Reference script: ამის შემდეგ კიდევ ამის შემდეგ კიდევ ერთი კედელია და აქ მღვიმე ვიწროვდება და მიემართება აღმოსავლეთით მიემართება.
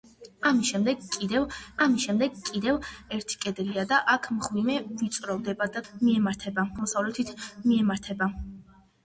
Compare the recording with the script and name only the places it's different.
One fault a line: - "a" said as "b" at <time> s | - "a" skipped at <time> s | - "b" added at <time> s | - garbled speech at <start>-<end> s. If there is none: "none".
none